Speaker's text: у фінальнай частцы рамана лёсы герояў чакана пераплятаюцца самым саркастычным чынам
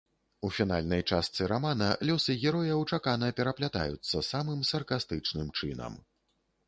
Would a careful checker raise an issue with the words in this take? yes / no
no